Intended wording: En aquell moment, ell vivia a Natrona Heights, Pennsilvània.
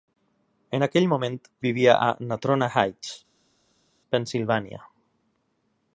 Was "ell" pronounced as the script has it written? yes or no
no